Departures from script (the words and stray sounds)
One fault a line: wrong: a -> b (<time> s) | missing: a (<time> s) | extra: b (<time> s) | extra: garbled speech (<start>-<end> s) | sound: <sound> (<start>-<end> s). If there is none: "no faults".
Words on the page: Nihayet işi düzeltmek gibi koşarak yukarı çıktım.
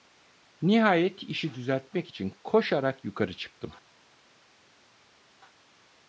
wrong: gibi -> için (2.1 s)